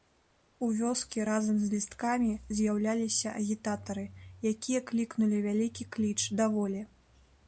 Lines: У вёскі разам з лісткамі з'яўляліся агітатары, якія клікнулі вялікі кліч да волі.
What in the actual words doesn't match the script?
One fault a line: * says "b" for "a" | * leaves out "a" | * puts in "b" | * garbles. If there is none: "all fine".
all fine